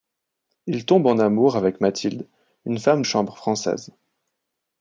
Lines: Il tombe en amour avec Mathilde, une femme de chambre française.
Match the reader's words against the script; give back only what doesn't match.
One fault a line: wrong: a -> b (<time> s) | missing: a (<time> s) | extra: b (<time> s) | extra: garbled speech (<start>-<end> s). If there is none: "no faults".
missing: de (3.0 s)